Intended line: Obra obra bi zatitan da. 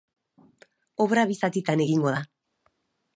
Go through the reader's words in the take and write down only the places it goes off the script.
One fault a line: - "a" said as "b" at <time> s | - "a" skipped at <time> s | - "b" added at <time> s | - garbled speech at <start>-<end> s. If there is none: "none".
- "obra" skipped at 1.2 s
- "egingo" added at 1.8 s